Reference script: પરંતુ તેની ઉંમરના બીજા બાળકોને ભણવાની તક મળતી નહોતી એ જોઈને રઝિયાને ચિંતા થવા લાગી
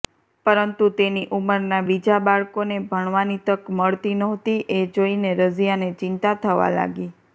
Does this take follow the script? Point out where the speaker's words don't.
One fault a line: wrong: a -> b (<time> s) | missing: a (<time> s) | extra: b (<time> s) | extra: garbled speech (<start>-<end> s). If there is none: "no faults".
no faults